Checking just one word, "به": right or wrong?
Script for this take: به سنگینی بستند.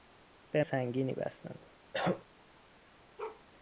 right